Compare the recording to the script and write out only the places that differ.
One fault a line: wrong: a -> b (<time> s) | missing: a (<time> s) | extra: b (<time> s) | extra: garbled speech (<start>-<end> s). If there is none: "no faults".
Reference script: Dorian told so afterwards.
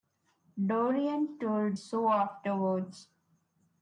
no faults